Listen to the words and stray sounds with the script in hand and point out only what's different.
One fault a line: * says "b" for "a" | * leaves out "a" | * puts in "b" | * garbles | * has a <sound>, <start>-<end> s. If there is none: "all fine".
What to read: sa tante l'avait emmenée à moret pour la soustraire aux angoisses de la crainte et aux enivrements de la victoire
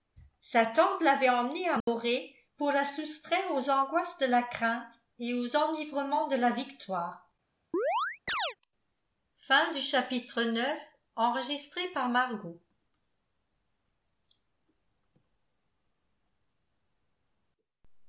* has a dropout, 1.8-1.9 s
* has a chirp, 7.7-8.6 s